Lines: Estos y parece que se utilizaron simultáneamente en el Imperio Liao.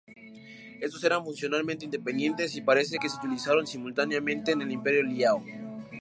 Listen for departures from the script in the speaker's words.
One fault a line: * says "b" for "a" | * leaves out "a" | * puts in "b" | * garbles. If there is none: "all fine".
* puts in "eran funcionalmente independientes"